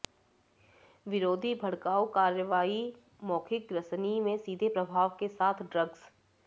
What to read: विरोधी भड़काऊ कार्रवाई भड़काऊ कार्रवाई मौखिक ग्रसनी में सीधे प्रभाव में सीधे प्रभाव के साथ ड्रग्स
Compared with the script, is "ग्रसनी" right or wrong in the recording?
right